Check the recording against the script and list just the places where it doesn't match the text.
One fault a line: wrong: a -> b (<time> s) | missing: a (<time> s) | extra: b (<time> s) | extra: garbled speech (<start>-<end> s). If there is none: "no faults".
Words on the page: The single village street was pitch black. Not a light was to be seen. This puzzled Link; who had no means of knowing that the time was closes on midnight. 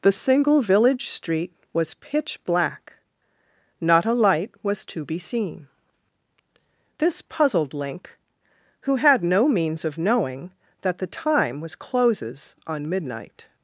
no faults